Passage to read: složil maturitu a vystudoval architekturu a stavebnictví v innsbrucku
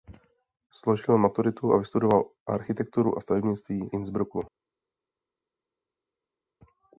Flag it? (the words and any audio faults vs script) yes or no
yes